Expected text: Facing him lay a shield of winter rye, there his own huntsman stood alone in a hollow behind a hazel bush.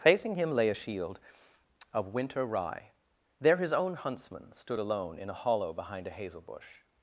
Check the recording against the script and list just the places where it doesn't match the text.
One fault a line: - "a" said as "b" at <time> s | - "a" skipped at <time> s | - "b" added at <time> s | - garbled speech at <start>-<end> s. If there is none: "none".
none